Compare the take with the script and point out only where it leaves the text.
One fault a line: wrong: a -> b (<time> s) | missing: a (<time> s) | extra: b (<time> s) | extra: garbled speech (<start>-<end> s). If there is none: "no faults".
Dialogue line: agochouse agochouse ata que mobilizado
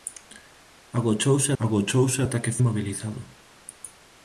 no faults